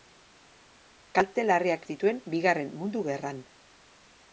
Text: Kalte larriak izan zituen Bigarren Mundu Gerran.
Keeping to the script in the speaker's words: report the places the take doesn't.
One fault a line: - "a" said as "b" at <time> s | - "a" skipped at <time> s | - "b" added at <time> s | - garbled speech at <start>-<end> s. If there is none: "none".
- "izan" skipped at 1.9 s